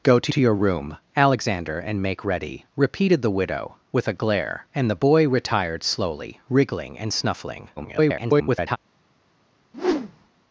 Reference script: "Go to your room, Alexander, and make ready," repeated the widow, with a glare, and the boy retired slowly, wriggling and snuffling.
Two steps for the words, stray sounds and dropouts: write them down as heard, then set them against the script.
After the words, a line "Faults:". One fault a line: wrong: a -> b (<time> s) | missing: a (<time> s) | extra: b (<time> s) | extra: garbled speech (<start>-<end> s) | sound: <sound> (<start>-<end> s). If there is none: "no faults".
"Go to to your room, Alexander, and make ready," repeated the widow, with a glare, and the boy retired slowly, wriggling and snuffling. [garbled]
Faults:
extra: to (0.3 s)
extra: garbled speech (7.8-8.8 s)
sound: whoosh (9.7-10.3 s)